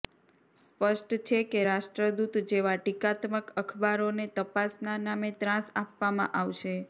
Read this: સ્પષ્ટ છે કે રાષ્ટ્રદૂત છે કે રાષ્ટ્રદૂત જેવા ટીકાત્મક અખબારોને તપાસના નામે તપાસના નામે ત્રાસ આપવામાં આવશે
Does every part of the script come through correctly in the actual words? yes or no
no